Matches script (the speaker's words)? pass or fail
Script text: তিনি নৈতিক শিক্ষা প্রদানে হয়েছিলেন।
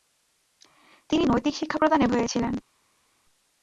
pass